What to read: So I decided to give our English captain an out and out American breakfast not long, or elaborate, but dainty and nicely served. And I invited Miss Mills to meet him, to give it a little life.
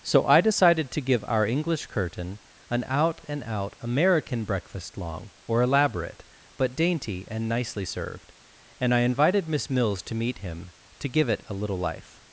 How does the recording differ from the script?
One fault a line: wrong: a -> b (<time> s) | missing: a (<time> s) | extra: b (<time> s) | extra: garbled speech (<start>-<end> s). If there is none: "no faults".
wrong: captain -> curtain (1.9 s)
missing: not (5.0 s)